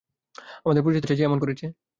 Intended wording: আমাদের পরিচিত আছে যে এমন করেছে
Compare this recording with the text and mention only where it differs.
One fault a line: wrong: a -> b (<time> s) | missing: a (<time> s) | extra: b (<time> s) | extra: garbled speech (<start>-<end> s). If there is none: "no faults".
no faults